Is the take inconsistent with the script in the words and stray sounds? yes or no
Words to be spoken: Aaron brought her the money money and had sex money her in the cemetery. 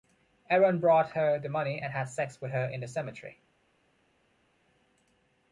yes